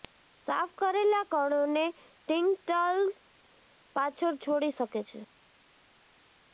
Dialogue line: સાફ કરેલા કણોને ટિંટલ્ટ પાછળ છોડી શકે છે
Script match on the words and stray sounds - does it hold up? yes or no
yes